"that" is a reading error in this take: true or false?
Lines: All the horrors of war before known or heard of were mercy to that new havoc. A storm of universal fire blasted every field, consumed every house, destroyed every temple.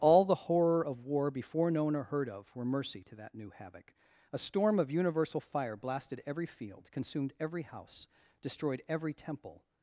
false